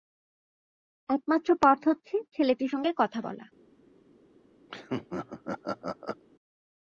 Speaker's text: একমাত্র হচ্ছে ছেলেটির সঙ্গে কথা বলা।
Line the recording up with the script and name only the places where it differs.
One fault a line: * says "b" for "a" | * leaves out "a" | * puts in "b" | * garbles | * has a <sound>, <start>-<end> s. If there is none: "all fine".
* puts in "পথ"
* has a laugh, 4.7-6.2 s